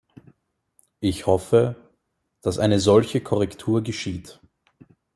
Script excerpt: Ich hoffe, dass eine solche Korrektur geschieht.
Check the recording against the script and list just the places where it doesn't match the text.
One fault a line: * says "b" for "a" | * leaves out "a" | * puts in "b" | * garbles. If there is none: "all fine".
all fine